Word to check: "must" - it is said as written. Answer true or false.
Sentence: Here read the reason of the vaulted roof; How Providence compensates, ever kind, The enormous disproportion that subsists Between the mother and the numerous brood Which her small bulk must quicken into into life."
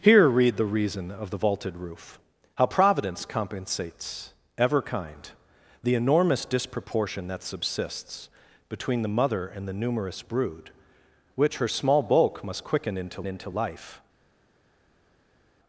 true